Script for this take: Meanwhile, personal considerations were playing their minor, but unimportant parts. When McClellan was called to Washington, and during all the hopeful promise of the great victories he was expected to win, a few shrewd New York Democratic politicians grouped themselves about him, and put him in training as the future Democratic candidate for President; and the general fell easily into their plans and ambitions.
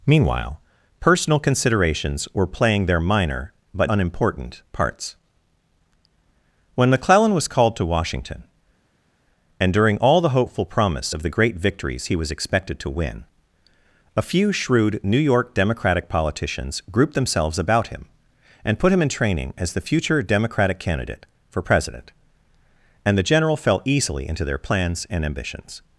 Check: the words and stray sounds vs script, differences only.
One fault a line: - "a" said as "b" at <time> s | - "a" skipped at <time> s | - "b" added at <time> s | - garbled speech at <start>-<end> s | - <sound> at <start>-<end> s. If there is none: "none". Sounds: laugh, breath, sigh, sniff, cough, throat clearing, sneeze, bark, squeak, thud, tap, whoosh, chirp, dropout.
none